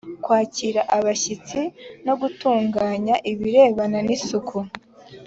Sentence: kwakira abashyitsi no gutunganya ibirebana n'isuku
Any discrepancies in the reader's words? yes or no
no